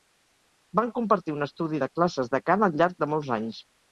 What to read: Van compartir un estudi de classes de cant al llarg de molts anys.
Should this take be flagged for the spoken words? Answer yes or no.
no